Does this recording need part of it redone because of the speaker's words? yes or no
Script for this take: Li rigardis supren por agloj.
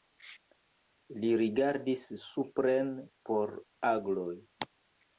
no